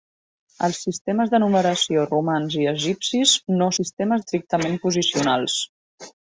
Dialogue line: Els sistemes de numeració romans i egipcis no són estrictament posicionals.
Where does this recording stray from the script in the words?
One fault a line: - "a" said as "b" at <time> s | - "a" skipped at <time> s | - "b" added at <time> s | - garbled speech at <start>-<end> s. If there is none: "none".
- "són" said as "sistemes" at 3.8 s